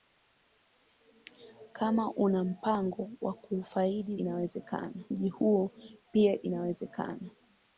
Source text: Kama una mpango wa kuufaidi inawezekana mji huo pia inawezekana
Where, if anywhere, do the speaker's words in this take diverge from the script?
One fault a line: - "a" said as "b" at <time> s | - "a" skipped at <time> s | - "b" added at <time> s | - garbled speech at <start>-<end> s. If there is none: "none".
none